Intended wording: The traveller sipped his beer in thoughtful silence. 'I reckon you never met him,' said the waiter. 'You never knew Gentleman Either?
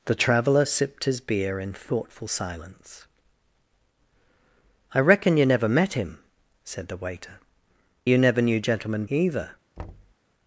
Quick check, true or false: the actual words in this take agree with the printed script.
true